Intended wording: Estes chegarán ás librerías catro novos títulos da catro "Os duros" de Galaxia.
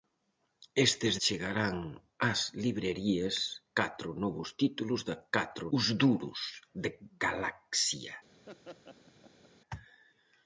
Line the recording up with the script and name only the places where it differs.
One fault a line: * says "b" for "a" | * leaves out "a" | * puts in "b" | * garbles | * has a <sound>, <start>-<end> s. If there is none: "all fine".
* has a laugh, 8.5-9.5 s